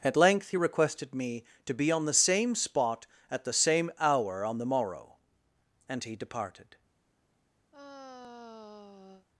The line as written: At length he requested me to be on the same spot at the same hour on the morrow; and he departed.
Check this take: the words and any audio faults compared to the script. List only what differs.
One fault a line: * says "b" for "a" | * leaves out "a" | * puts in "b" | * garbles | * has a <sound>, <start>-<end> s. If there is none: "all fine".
* has a sigh, 7.7-9.3 s